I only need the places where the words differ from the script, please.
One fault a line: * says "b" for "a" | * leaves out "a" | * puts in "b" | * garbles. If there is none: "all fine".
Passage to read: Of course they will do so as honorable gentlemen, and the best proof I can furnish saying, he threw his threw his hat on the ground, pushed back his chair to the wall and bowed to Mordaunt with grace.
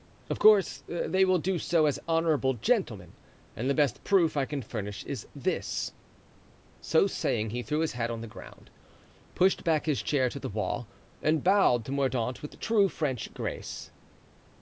* puts in "is this So"
* leaves out "threw his"
* puts in "true French"